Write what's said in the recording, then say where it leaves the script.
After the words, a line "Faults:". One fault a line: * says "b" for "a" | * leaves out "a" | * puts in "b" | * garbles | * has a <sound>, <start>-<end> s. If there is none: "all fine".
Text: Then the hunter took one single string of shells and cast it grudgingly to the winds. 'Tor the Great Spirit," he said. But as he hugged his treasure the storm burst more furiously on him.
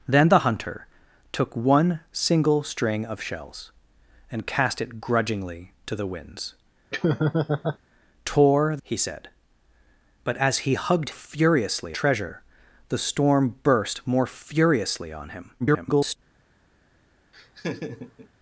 Then the hunter took one single string of shells and cast it grudgingly to the winds. 'Tor," he said. But as he hugged furiously treasure the storm burst more furiously on him. [garbled]
Faults:
* has a laugh, 6.9-7.8 s
* leaves out "the Great Spirit"
* says "furiously" for "his"
* garbles
* has a laugh, 17.3-18.3 s